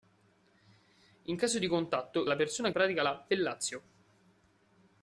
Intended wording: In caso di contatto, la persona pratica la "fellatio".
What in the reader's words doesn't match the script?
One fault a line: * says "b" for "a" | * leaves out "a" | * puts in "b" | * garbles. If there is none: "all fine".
all fine